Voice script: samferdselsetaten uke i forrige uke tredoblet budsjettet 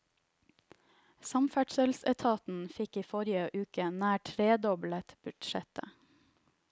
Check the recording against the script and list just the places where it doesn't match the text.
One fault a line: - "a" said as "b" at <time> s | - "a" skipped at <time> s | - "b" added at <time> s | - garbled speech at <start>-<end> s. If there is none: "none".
- "uke" said as "fikk" at 2.8 s
- "nær" added at 4.0 s